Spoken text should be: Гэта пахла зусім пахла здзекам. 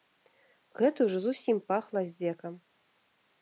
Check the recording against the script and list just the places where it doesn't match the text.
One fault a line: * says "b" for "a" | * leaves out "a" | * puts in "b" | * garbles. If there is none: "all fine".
* says "ўжо" for "пахла"